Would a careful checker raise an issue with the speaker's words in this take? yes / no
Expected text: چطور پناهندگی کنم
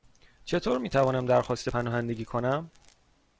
yes